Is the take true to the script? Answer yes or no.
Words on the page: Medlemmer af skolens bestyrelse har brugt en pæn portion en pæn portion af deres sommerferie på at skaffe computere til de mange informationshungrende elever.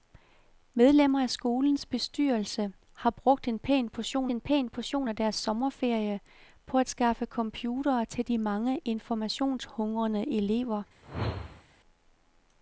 yes